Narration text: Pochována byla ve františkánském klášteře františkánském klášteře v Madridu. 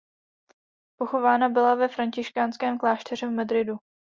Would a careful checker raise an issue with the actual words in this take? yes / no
yes